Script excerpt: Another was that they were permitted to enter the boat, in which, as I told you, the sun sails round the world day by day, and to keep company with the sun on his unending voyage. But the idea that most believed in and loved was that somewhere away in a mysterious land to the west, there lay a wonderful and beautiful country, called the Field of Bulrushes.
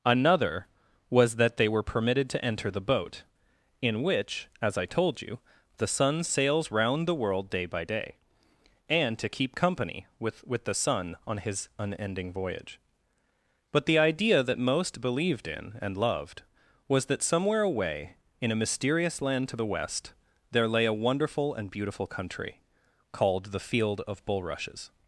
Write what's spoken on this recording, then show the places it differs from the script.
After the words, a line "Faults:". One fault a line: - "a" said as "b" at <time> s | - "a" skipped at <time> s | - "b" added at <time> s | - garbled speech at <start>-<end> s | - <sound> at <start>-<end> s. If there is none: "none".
Another was that they were permitted to enter the boat, in which, as I told you, the sun sails round the world day by day, and to keep company with with the sun on his unending voyage. But the idea that most believed in and loved was that somewhere away in a mysterious land to the west, there lay a wonderful and beautiful country, called the Field of Bulrushes.
Faults:
- "with" added at 10.5 s